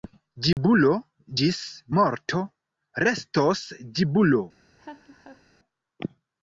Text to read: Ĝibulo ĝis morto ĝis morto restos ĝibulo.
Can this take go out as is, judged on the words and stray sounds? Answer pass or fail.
fail